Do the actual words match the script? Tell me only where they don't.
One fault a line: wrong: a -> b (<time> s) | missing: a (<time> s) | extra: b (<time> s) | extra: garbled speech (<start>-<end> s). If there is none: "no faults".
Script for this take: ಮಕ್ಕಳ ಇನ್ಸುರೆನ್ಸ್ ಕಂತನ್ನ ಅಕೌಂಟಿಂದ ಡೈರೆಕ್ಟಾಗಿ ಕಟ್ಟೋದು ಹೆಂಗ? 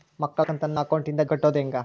missing: ಇನ್ಸುರೆನ್ಸ್ (0.5 s)
missing: ಡೈರೆಕ್ಟಾಗಿ (1.2 s)